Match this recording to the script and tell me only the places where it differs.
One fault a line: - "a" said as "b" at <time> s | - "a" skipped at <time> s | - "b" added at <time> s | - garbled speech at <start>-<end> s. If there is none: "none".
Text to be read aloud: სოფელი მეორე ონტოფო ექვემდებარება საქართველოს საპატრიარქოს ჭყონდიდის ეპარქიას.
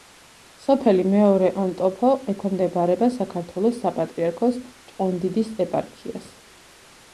none